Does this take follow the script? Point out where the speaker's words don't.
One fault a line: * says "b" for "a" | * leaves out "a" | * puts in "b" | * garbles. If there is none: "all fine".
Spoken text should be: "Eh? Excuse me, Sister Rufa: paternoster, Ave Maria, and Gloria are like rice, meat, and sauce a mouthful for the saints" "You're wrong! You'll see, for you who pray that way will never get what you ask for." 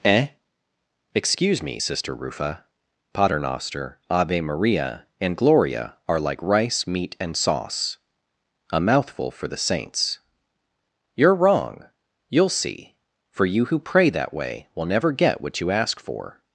all fine